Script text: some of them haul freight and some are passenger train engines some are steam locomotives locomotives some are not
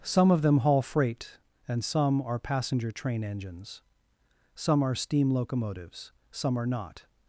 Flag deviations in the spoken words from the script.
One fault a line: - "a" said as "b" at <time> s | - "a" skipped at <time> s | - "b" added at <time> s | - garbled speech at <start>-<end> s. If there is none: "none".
- "locomotives" skipped at 6.1 s